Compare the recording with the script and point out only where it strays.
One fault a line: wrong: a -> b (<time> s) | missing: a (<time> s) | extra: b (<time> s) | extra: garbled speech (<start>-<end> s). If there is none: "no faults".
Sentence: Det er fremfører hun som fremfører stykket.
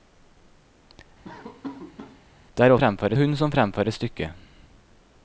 no faults